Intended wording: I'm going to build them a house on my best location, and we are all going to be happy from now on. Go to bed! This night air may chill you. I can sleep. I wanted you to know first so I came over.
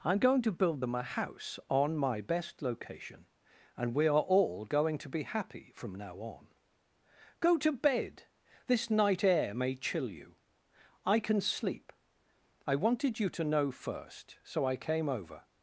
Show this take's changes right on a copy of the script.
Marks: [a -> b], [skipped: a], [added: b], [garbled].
I'm going to build them a house on my best location, and we are all going to be happy from now on. Go to bed! This night air may chill you. I can sleep. I wanted you to know first so I came over.